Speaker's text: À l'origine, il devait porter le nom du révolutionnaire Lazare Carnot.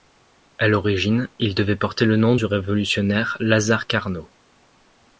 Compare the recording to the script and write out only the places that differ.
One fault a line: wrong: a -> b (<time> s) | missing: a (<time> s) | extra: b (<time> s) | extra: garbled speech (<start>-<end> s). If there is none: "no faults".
no faults